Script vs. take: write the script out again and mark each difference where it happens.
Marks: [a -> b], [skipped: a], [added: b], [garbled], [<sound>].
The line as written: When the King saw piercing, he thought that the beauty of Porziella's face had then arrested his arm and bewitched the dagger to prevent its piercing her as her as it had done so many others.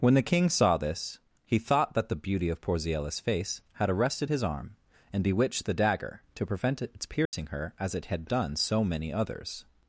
When the King saw [piercing, -> this] he thought that the beauty of Porziella's face had [skipped: then] arrested his arm and bewitched the dagger to prevent its piercing [dropout] her as [skipped: her as] it had done so many others.